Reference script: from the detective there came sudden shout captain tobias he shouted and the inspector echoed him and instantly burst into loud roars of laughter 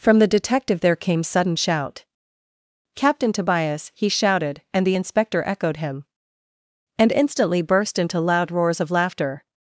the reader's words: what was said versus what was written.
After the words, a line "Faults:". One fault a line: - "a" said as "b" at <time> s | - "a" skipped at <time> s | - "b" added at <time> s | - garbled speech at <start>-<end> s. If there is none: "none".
from the detective there came sudden shout captain tobias he shouted and the inspector echoed him and instantly burst into loud roars of laughter
Faults:
none